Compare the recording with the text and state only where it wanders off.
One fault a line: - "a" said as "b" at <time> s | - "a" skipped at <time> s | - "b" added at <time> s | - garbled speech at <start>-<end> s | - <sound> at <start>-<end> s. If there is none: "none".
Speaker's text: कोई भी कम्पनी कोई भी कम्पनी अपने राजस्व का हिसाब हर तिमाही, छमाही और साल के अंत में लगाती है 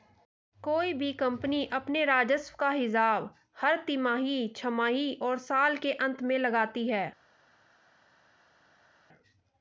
- "कोई भी कम्पनी" skipped at 1.6 s